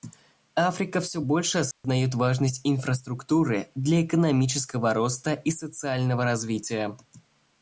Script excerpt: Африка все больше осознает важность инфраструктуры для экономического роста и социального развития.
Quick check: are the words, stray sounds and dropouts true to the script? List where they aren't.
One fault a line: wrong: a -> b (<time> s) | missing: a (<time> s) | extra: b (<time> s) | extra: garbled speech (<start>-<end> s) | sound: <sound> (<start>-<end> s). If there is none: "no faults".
sound: dropout (1.7-1.8 s)